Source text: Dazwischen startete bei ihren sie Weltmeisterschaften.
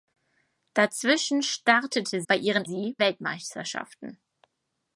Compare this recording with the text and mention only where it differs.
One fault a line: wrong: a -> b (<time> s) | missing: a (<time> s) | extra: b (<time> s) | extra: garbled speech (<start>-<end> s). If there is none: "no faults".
no faults